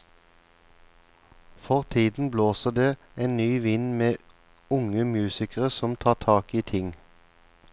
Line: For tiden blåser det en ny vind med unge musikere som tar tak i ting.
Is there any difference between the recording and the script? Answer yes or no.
no